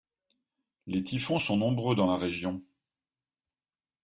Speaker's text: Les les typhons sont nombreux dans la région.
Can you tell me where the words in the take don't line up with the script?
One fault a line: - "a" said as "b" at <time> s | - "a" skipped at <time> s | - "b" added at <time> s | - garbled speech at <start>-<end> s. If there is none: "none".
- "les" skipped at 1.0 s